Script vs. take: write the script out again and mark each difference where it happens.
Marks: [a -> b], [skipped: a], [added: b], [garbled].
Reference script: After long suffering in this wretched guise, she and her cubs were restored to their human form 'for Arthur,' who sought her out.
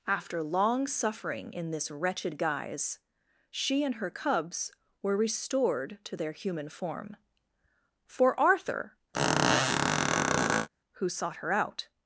After long suffering in this wretched guise, she and her cubs were restored to their human form 'for Arthur,' who sought her out.